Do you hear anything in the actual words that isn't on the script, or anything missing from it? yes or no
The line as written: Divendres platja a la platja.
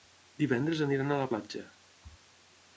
yes